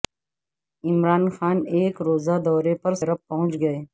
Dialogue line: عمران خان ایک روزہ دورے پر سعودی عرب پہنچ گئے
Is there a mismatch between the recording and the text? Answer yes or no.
yes